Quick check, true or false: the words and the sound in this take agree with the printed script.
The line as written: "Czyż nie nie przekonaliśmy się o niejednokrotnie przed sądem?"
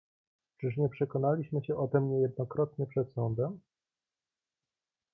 false